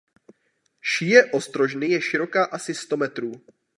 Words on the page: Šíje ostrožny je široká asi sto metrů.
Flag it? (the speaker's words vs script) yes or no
no